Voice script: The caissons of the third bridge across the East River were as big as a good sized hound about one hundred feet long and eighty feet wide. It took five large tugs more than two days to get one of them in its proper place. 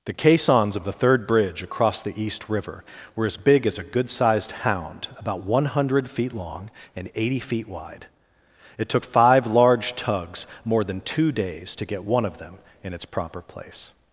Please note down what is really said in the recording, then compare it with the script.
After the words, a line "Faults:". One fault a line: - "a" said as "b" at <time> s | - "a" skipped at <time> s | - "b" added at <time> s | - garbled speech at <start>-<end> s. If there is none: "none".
The caissons of the third bridge across the East River were as big as a good sized hound about one hundred feet long and eighty feet wide. It took five large tugs more than two days to get one of them in its proper place.
Faults:
none